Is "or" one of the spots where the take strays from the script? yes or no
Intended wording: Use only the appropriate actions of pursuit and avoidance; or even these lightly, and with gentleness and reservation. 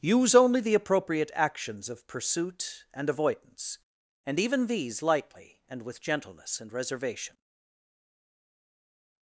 yes